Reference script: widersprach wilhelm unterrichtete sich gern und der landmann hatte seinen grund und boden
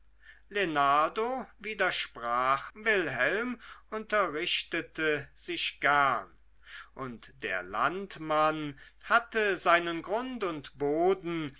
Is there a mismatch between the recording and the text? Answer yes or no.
no